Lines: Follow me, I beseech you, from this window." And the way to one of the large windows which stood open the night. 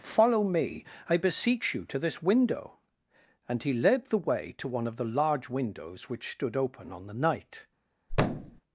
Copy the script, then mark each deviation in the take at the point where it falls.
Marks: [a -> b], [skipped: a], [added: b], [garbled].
Follow me, I beseech you, [from -> to] this window." And [added: he led] the way to one of the large windows which stood open [added: on] the night.